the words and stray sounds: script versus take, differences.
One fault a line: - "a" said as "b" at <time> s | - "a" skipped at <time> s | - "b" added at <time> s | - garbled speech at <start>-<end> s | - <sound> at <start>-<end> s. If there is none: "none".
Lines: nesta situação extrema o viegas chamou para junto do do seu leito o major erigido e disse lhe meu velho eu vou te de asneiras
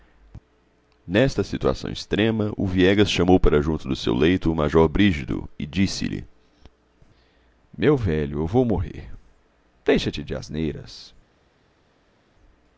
- "do" skipped at 4.0 s
- "morrer deixa" added at 8.6 s